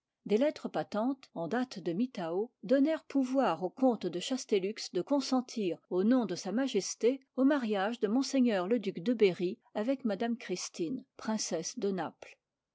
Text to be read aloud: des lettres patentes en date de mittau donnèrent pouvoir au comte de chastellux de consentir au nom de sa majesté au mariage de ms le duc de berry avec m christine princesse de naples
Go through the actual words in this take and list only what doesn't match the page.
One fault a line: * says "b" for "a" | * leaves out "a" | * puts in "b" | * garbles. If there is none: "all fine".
all fine